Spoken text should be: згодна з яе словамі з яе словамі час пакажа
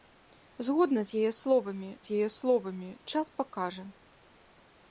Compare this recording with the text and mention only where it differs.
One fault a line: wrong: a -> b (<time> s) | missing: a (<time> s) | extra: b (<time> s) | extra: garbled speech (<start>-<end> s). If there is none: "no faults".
no faults